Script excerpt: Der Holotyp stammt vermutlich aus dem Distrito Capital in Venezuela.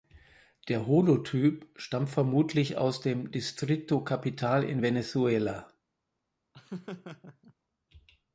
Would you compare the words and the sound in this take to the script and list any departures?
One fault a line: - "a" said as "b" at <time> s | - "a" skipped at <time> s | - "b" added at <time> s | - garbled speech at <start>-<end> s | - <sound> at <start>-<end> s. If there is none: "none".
- laugh at 6.5-7.5 s